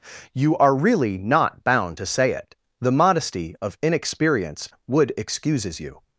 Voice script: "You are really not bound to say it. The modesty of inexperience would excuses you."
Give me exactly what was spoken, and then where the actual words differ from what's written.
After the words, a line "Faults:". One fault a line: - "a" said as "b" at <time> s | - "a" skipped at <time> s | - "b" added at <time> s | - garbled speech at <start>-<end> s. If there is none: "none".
"You are really not bound to say it. The modesty of inexperience would excuses you."
Faults:
none